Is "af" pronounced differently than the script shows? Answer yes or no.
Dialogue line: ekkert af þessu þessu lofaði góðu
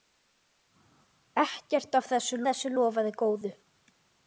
no